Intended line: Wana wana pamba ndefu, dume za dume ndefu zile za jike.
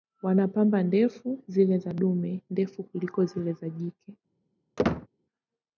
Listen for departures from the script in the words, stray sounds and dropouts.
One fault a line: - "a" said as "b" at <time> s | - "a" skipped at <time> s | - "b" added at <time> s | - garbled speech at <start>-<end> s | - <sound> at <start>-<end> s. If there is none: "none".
- "wana" skipped at 0.5 s
- "dume" said as "zile" at 1.5 s
- "kuliko" added at 2.8 s
- squeak at 4.8-5.1 s